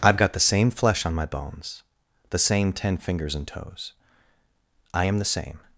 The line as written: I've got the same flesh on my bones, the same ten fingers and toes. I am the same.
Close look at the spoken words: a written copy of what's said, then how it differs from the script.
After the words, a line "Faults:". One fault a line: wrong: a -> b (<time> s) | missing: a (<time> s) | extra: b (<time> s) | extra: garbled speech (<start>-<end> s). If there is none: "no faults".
I've got the same flesh on my bones, the same ten fingers and toes. I am the same.
Faults:
no faults